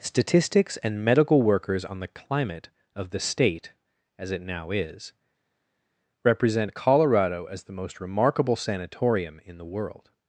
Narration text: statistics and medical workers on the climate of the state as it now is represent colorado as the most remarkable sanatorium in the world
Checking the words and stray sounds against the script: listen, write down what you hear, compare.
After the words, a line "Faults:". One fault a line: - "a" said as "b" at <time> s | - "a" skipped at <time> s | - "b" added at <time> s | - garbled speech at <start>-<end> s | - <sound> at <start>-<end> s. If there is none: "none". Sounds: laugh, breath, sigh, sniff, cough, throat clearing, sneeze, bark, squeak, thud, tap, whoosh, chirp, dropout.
statistics and medical workers on the climate of the state as it now is represent colorado as the most remarkable sanatorium in the world
Faults:
none